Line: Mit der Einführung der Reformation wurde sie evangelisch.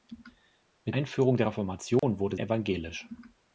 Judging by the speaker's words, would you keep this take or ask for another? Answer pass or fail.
fail